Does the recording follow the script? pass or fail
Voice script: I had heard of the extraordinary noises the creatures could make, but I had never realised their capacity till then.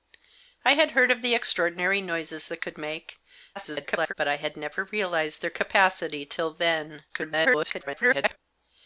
fail